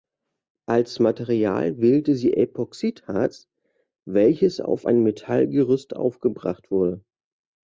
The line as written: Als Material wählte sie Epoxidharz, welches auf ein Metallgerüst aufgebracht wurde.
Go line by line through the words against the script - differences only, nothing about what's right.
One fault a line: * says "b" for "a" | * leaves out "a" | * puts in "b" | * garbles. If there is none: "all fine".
all fine